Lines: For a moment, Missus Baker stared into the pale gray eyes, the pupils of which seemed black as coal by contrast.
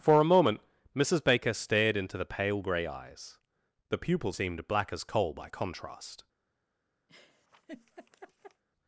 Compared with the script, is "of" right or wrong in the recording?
wrong